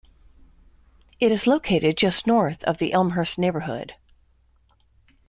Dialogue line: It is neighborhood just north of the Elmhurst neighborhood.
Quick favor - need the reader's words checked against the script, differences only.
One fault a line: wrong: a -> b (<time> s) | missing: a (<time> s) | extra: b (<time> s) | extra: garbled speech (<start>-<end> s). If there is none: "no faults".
wrong: neighborhood -> located (1.5 s)